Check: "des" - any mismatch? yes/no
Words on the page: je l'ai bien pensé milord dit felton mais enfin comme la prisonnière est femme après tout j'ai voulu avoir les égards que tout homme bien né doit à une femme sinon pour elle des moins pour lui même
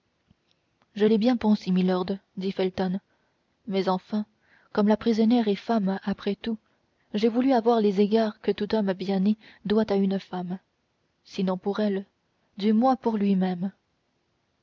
yes